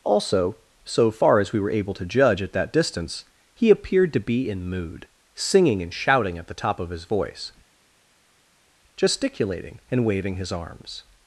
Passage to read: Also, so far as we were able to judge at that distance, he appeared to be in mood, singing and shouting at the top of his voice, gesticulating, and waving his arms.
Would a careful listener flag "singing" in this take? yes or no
no